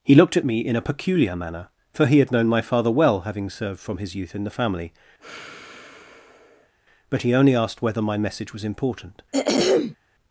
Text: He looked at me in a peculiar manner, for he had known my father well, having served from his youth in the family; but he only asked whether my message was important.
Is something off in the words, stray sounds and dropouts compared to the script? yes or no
yes